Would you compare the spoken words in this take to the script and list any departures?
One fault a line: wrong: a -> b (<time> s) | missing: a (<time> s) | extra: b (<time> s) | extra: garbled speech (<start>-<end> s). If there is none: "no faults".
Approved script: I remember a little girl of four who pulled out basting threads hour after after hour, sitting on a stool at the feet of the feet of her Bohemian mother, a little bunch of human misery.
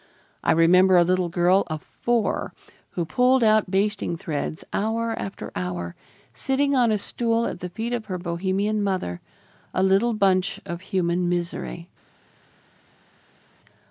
missing: after (5.5 s)
missing: the feet of (8.1 s)